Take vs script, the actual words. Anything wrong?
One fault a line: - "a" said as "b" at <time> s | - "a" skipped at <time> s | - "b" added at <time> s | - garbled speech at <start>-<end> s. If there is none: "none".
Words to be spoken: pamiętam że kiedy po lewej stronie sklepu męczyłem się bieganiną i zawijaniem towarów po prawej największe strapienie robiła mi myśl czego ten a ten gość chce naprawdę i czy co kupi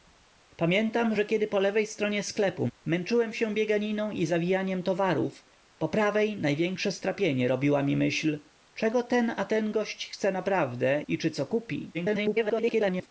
- garbled speech at 11.9-13.1 s